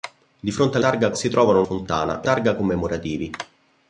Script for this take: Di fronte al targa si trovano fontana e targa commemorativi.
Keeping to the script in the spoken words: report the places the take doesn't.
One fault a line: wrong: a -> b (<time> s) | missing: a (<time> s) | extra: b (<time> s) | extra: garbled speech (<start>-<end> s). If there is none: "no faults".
no faults